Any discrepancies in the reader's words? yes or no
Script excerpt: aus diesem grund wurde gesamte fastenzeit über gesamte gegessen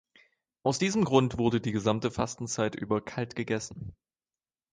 yes